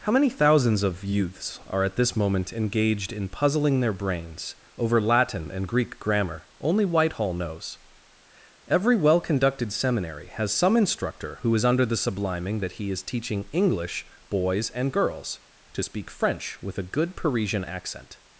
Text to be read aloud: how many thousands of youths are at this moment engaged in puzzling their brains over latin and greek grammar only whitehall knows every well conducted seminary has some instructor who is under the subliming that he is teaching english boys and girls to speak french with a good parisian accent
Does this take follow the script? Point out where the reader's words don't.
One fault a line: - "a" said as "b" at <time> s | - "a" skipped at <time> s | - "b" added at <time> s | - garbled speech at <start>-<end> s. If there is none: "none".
none